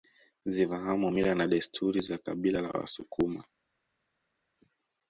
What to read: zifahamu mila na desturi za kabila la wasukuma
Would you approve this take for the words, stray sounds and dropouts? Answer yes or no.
yes